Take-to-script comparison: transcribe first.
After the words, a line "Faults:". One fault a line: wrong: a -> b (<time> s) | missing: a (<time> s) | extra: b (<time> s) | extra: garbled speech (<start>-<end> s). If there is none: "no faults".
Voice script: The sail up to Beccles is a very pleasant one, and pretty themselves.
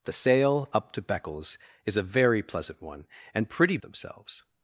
The sail up to Beccles is a very pleasant one, and pretty themselves.
Faults:
no faults